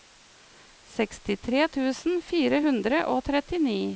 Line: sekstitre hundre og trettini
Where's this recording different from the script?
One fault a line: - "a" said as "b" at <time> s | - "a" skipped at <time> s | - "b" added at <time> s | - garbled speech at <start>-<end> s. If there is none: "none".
- "tusen fire" added at 1.8 s